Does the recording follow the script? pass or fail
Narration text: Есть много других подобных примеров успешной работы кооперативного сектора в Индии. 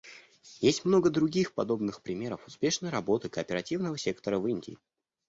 pass